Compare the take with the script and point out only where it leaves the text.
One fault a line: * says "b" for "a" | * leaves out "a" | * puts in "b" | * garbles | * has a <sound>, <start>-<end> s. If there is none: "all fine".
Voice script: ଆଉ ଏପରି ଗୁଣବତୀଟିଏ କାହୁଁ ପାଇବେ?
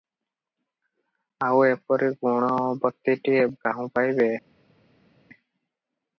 all fine